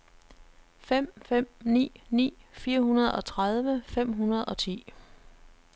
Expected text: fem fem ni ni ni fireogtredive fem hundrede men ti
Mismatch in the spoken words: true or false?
true